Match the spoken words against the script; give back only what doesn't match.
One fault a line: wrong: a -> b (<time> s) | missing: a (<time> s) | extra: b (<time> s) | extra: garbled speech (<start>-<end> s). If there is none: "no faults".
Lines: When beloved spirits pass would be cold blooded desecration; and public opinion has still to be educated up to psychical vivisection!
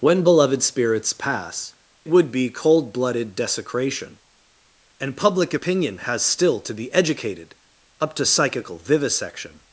no faults